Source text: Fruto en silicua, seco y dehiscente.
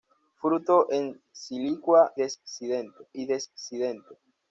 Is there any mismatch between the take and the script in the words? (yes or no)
yes